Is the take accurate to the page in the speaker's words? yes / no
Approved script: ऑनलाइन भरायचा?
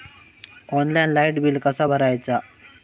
no